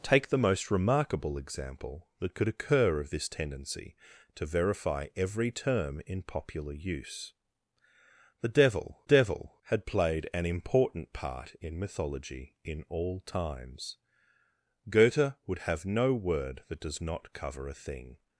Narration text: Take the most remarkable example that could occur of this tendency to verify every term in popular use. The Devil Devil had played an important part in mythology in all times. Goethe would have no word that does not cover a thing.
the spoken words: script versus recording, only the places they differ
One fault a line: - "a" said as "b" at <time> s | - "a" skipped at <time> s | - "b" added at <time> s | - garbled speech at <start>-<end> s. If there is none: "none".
none